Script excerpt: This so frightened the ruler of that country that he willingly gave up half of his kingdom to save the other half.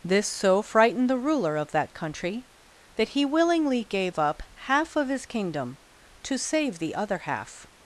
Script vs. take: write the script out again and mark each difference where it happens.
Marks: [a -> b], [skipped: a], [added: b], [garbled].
This so frightened the ruler of that country that he willingly gave up half of his kingdom to save the other half.